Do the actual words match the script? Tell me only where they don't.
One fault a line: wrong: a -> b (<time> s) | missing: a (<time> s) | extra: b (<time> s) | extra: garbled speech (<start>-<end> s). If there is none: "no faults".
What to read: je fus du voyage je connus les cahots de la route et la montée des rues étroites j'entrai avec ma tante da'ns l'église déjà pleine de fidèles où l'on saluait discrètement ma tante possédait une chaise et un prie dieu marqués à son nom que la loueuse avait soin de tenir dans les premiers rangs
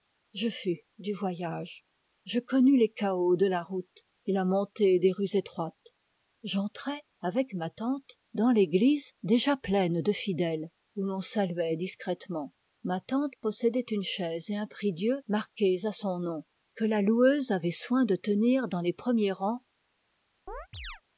no faults